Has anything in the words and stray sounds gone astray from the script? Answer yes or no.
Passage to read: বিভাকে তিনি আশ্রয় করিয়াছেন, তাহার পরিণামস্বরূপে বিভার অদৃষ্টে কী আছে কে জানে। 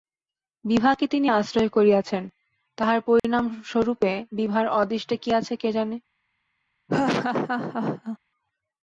yes